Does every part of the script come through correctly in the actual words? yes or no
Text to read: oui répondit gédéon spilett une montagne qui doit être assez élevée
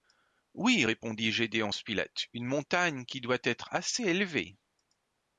yes